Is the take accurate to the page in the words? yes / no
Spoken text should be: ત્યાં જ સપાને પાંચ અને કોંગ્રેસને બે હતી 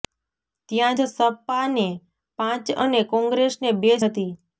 yes